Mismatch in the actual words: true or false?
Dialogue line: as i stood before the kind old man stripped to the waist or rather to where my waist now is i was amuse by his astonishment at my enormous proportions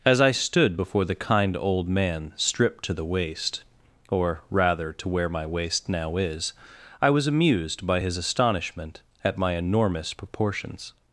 true